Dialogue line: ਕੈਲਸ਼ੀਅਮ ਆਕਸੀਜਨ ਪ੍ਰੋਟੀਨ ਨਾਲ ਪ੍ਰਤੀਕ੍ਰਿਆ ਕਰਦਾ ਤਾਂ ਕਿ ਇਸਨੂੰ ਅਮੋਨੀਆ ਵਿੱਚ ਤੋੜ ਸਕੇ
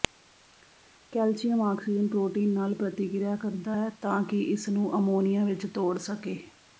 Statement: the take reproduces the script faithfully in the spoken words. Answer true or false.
false